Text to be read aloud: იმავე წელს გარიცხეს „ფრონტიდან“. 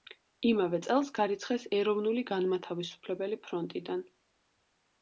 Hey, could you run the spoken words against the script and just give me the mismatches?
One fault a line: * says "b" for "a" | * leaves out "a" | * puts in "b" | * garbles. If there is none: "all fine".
* puts in "ეროვნული განმათავისუფლებელი"